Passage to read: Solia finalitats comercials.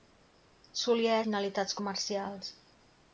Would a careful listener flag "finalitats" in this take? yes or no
no